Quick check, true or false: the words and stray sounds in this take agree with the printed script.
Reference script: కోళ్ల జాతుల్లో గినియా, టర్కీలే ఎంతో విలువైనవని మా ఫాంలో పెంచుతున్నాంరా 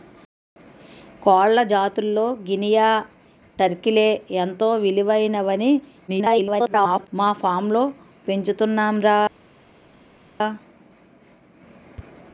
false